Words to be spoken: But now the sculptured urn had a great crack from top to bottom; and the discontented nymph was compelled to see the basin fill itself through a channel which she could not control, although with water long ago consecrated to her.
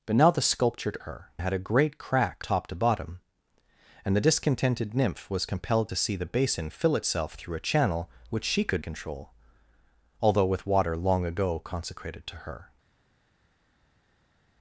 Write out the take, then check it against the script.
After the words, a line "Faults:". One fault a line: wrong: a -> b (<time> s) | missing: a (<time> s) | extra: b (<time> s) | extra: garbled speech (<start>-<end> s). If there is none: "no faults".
But now the sculptured her had a great crack top to bottom; and the discontented nymph was compelled to see the basin fill itself through a channel which she could control, although with water long ago consecrated to her.
Faults:
wrong: urn -> her (1.0 s)
missing: from (2.4 s)
missing: not (8.8 s)